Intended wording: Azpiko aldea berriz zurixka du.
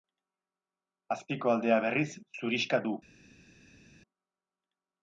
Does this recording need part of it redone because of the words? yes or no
no